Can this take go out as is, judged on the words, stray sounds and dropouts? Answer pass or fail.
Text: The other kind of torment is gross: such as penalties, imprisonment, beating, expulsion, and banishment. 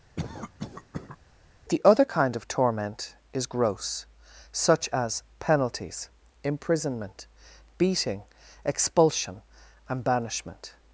fail